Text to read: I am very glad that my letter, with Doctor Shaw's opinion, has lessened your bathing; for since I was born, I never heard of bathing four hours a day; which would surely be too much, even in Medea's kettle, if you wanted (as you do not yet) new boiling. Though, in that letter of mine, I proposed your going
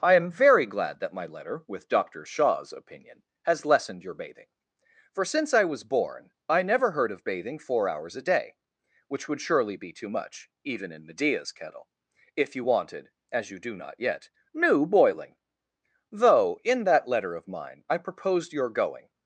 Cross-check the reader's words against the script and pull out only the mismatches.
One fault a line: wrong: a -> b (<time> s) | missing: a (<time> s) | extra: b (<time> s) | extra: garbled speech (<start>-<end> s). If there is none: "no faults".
no faults